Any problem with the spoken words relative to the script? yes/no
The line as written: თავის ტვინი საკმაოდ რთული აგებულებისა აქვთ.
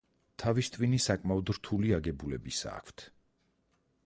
no